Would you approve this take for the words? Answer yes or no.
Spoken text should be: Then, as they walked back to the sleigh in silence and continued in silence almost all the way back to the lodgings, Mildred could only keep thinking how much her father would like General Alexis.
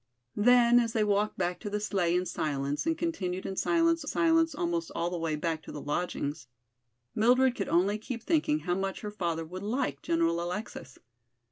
no